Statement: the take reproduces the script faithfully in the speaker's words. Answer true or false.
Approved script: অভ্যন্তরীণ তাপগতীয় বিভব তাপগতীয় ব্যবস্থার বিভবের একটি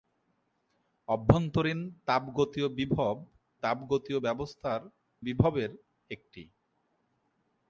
true